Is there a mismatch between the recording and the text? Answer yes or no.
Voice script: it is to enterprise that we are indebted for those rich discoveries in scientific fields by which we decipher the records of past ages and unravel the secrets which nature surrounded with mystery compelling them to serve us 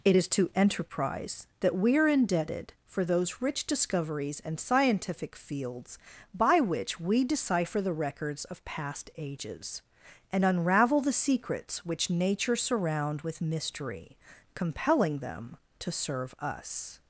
yes